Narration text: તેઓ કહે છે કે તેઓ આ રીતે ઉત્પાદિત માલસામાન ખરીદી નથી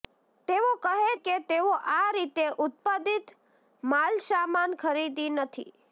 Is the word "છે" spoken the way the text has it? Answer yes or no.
no